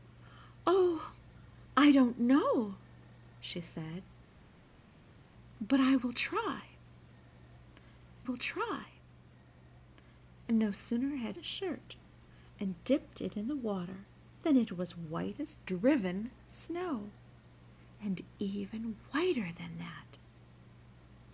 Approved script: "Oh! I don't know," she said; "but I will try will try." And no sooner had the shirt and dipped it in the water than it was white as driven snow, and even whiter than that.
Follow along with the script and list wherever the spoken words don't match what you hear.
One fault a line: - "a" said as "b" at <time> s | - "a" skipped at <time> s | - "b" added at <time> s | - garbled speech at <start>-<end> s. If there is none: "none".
none